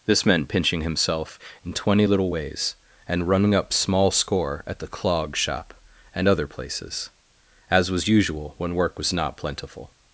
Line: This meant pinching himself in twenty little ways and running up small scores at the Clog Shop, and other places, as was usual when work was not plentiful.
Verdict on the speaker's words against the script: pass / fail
fail